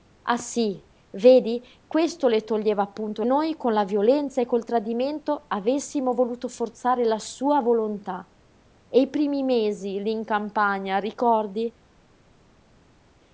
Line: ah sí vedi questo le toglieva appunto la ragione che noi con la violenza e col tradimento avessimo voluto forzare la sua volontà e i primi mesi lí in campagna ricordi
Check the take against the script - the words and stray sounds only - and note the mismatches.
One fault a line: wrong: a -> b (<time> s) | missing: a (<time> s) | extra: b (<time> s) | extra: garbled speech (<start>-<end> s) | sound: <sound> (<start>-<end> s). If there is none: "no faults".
missing: la ragione che (3.2 s)